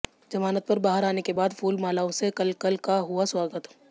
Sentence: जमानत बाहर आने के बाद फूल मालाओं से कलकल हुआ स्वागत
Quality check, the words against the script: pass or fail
fail